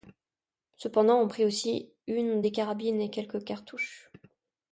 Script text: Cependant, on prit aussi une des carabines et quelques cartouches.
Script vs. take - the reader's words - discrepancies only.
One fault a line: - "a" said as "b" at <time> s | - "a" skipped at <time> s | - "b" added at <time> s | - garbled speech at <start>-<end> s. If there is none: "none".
none